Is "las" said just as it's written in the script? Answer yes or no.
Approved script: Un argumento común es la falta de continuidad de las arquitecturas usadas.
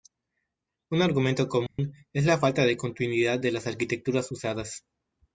yes